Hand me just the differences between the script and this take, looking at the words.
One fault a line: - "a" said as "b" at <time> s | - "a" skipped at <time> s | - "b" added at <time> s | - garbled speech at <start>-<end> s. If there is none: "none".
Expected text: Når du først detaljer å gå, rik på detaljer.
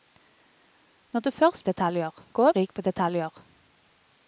none